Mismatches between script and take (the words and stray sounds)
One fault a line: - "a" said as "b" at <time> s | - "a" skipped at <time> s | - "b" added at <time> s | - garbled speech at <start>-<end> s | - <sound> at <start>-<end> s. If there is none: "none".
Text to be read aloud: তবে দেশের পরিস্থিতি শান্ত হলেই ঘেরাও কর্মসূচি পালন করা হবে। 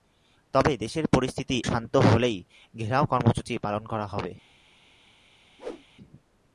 - whoosh at 5.6-5.8 s